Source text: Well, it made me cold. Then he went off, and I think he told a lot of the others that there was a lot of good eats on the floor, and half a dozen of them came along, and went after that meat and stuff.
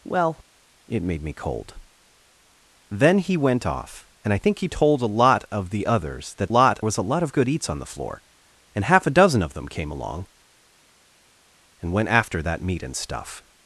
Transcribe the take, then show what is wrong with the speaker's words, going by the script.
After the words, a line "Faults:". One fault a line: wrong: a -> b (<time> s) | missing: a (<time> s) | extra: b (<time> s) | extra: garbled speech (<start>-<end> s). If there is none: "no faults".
Well, it made me cold. Then he went off, and I think he told a lot of the others that lot was a lot of good eats on the floor, and half a dozen of them came along, and went after that meat and stuff.
Faults:
wrong: there -> lot (6.5 s)